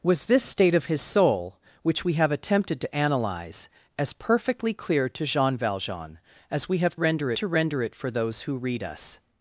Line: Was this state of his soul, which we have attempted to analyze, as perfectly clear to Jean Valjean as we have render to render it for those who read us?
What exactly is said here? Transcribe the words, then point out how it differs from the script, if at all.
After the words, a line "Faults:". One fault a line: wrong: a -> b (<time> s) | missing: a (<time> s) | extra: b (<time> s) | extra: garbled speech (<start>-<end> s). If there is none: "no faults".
Was this state of his soul, which we have attempted to analyze, as perfectly clear to Jean Valjean as we have render to render it for those who read us?
Faults:
no faults